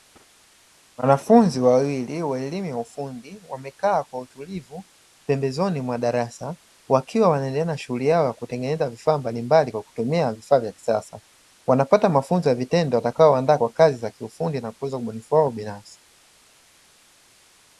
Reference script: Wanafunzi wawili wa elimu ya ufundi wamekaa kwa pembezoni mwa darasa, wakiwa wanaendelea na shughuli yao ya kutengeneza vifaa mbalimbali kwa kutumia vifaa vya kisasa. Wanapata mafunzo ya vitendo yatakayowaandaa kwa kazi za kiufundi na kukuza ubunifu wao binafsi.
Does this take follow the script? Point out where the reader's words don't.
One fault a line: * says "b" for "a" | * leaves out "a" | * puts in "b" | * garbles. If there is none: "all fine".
* puts in "utulivu"